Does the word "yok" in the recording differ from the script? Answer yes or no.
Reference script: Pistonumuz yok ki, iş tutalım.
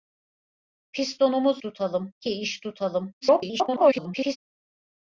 yes